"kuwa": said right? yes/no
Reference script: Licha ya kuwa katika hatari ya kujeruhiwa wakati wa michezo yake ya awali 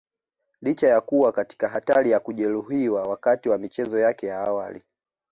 yes